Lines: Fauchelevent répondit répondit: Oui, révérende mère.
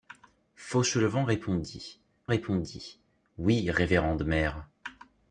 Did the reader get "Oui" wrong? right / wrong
right